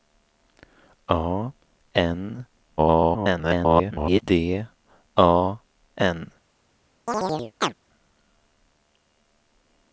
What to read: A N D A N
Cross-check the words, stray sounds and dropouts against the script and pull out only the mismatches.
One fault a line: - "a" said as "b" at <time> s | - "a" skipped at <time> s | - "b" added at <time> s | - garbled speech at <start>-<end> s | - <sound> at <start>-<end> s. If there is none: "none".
- garbled speech at 2.8-4.2 s
- chirp at 7.1-7.7 s